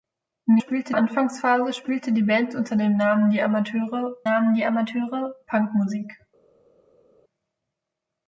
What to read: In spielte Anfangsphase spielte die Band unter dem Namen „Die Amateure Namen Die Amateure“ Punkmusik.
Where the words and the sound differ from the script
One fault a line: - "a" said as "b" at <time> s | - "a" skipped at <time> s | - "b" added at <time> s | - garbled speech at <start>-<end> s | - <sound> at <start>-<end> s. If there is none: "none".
none